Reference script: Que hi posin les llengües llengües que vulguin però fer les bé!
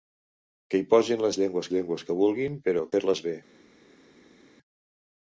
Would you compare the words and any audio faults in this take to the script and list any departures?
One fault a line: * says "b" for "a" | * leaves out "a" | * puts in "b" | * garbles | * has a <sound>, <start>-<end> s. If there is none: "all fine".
all fine